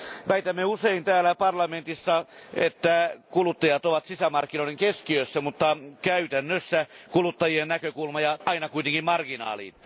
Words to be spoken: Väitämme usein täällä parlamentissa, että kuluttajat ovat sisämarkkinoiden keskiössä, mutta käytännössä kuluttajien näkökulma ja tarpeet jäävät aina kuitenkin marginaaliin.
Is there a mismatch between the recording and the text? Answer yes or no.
yes